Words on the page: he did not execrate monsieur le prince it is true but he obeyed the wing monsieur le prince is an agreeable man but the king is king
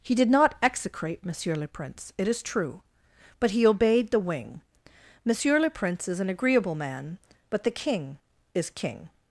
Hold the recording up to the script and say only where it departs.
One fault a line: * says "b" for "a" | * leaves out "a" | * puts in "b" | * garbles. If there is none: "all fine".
all fine